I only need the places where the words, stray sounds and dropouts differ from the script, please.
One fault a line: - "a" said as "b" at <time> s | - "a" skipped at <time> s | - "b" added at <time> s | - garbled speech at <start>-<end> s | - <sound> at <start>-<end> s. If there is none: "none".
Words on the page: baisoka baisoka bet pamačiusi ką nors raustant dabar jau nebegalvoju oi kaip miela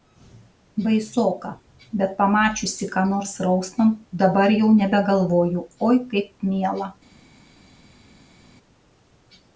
- "baisoka" skipped at 1.5 s